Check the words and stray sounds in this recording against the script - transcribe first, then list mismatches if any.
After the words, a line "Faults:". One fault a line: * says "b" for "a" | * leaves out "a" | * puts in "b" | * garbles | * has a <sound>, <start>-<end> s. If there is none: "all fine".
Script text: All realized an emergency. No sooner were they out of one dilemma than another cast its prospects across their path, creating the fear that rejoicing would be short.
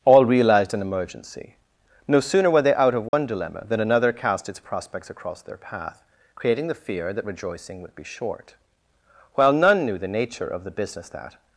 All realized an emergency. No sooner were they out of one dilemma than another cast its prospects across their path, creating the fear that rejoicing would be short. While none knew the nature of the business that
Faults:
* has a dropout, 3.1-3.1 s
* puts in "While none knew the nature of the business that"